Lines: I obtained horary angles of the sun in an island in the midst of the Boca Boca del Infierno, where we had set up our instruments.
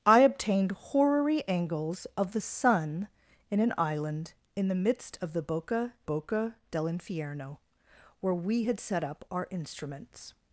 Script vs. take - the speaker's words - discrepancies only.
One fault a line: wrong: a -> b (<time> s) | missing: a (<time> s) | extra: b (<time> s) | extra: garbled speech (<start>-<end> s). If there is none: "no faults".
no faults